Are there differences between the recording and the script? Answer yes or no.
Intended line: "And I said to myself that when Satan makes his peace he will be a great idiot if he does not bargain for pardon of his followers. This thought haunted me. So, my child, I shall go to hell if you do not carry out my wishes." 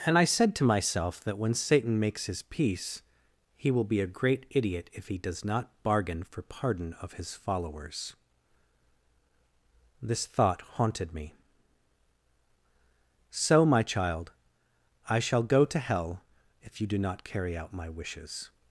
no